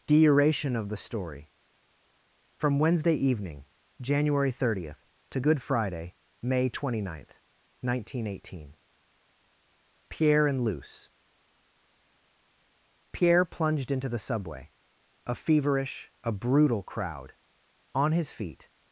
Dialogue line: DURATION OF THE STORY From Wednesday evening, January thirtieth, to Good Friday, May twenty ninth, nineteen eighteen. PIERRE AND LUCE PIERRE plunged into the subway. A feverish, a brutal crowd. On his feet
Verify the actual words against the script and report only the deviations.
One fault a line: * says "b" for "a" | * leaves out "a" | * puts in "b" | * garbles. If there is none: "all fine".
all fine